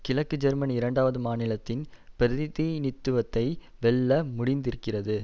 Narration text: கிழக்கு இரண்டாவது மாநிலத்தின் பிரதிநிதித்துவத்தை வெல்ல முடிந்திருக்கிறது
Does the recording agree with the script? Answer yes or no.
no